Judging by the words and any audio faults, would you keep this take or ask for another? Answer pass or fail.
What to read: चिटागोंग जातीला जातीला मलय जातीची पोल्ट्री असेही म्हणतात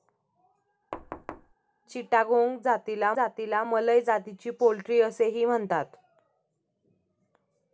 fail